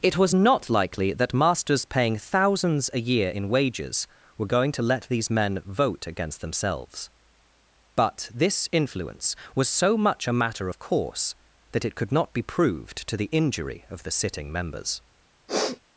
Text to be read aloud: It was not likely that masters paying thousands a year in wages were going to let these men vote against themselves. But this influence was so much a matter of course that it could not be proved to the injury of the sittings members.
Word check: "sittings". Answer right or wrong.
wrong